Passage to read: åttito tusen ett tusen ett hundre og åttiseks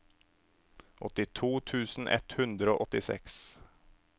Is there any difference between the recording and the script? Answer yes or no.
yes